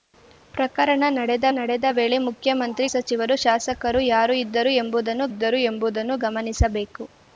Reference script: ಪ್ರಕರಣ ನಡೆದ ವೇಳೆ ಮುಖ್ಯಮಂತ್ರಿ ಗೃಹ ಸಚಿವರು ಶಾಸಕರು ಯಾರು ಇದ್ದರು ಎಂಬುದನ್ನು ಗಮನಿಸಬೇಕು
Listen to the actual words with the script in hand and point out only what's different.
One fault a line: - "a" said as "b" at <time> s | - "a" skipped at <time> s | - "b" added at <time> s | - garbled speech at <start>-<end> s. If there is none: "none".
- "ನಡೆದ" added at 1.6 s
- "ಗೃಹ" skipped at 2.9 s
- "ಇದ್ದರು ಎಂಬುದನ್ನು" added at 5.3 s